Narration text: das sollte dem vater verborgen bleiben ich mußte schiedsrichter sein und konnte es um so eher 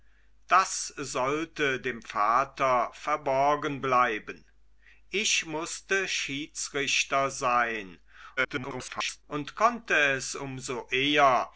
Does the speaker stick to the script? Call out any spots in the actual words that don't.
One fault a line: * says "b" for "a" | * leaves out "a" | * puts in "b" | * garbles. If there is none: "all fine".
* garbles